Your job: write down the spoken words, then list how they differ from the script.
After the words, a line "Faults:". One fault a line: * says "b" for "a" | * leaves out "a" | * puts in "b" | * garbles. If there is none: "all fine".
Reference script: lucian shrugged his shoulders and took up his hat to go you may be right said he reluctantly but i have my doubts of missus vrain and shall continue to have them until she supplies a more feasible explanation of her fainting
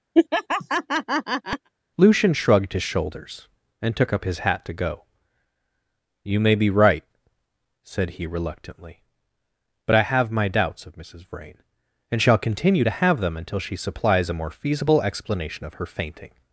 lucian shrugged his shoulders and took up his hat to go you may be right said he reluctantly but i have my doubts of missus vrain and shall continue to have them until she supplies a more feasible explanation of her fainting
Faults:
all fine